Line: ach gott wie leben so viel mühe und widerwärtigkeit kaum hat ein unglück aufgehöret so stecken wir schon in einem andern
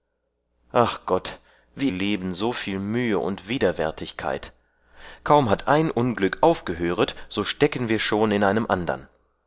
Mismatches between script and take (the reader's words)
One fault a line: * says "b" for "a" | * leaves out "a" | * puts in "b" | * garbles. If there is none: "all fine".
all fine